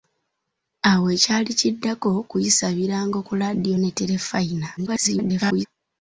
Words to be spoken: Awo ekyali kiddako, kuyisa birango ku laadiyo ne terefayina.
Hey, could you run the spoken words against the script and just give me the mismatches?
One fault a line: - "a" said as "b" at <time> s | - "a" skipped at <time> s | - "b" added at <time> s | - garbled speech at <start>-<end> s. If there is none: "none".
- garbled speech at 4.8-5.7 s